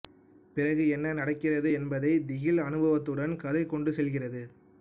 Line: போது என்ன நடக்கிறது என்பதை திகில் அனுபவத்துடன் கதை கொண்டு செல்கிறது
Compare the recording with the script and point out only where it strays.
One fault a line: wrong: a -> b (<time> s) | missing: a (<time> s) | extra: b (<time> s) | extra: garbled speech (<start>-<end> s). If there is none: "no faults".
wrong: போது -> பிறகு (0.5 s)